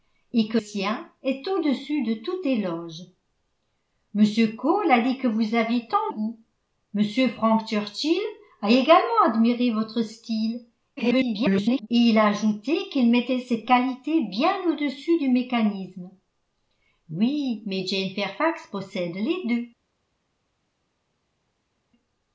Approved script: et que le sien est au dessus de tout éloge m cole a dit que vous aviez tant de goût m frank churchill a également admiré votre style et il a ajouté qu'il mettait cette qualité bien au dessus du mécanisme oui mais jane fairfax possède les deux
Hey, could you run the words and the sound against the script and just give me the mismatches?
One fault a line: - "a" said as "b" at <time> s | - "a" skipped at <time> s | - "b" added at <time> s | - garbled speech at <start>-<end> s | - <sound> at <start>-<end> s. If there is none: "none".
- "le" skipped at 0.6 s
- "de" skipped at 6.1 s
- garbled speech at 11.0-11.9 s